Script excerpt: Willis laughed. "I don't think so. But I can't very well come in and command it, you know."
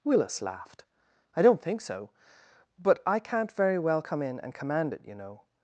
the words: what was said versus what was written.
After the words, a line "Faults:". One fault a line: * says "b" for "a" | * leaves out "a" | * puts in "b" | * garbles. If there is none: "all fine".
Willis laughed. "I don't think so. But I can't very well come in and command it, you know."
Faults:
all fine